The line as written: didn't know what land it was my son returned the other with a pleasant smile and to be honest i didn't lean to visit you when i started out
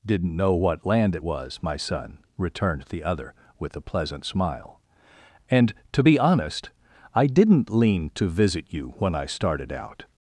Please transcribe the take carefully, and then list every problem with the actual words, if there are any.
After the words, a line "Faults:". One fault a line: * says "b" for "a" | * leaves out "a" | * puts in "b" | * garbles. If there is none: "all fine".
didn't know what land it was my son returned the other with a pleasant smile and to be honest i didn't lean to visit you when i started out
Faults:
all fine